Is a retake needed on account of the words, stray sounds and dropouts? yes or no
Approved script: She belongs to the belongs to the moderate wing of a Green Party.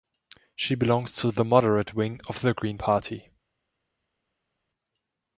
yes